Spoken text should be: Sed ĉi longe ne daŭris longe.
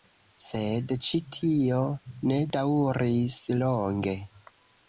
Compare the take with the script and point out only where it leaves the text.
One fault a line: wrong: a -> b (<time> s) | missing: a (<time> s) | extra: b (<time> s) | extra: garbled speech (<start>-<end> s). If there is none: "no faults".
wrong: longe -> tio (1.4 s)